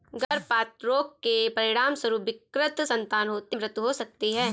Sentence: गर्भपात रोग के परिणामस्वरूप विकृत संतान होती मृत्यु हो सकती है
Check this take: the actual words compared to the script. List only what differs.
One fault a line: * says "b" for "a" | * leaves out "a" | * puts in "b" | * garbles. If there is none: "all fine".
all fine